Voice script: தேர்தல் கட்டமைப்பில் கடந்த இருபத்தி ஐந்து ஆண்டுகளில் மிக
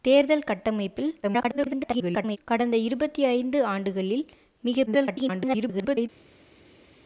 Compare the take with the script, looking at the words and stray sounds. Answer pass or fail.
fail